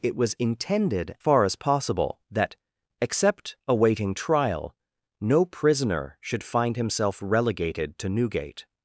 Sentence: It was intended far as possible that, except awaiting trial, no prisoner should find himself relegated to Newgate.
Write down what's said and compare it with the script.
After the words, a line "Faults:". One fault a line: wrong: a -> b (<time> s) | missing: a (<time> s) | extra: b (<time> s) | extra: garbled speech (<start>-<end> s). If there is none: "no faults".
It was intended far as possible that, except awaiting trial, no prisoner should find himself relegated to Newgate.
Faults:
no faults